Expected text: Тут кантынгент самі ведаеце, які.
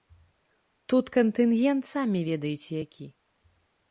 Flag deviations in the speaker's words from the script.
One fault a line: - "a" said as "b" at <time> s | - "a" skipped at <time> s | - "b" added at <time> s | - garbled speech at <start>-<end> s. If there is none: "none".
none